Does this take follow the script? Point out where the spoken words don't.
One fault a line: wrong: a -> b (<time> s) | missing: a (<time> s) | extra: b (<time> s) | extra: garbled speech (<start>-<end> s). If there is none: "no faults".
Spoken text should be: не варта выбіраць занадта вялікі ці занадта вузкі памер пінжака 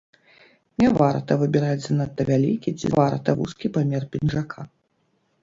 wrong: занадта -> варта (3.0 s)